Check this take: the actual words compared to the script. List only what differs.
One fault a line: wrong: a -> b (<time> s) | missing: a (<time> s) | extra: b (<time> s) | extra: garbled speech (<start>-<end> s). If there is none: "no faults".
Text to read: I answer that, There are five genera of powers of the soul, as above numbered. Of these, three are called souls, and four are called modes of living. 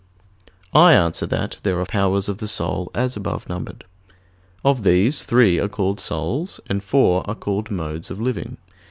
missing: five genera of (1.9 s)